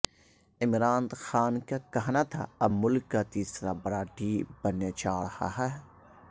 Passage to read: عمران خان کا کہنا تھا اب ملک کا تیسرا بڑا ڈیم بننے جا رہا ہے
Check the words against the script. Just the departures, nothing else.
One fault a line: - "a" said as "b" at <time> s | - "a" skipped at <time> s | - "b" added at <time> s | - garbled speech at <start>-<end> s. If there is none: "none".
none